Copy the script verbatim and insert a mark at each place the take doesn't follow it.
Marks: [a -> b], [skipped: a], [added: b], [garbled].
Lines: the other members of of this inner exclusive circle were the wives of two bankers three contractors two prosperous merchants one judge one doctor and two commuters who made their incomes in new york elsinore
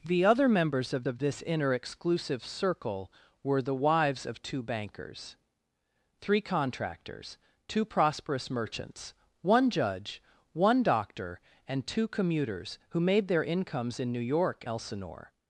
the other members of of this inner exclusive circle were the wives of two bankers three contractors two prosperous merchants one judge one doctor and two commuters who made their incomes in new york elsinore